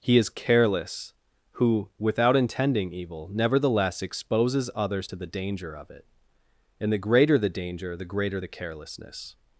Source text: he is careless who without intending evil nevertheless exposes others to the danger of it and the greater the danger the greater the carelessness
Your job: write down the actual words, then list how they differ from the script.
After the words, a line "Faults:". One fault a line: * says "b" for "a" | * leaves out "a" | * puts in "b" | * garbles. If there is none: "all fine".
he is careless who without intending evil nevertheless exposes others to the danger of it and the greater the danger the greater the carelessness
Faults:
all fine